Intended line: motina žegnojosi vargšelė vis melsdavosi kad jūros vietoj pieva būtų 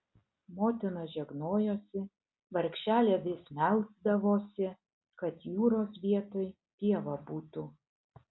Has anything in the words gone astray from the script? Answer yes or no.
no